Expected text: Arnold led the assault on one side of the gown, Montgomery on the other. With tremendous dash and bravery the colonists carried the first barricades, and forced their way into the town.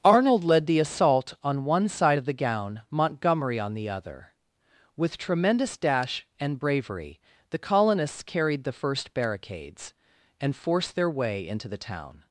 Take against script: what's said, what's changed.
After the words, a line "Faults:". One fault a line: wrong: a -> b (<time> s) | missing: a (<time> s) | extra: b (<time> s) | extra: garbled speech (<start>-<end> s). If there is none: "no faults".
Arnold led the assault on one side of the gown, Montgomery on the other. With tremendous dash and bravery the colonists carried the first barricades, and forced their way into the town.
Faults:
no faults